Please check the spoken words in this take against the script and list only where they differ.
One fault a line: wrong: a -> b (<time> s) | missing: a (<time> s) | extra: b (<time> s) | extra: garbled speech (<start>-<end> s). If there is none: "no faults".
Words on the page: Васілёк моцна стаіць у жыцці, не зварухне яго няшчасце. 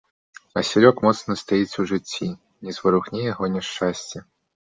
no faults